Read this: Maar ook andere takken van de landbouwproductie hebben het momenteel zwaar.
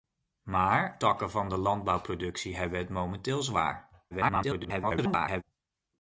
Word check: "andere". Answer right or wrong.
wrong